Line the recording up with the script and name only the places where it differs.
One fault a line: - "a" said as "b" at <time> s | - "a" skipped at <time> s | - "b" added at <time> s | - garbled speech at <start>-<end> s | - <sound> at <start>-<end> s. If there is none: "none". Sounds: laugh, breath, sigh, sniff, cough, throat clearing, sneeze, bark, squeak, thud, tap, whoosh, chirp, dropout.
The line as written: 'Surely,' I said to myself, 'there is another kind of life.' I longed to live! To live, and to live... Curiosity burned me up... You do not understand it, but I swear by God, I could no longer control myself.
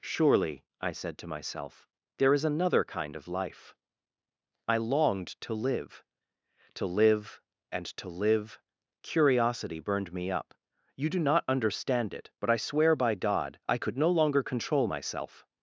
none